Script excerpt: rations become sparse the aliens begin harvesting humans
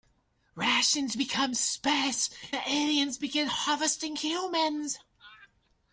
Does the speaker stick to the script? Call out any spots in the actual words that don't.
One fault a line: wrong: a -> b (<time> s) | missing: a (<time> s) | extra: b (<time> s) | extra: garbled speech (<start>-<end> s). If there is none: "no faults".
no faults